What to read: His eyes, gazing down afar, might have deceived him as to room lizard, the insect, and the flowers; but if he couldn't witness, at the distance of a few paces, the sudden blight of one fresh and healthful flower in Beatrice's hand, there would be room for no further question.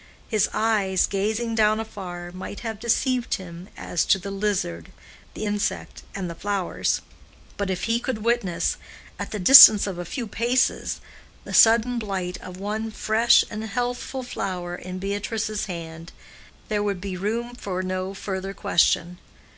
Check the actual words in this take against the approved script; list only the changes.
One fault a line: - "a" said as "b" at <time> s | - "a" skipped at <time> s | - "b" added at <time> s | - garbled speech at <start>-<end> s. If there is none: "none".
- "room" said as "the" at 4.2 s
- "couldn't" said as "could" at 8.0 s